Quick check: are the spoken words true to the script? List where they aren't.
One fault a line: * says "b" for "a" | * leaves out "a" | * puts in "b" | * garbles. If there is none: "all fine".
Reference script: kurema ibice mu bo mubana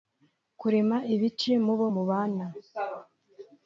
all fine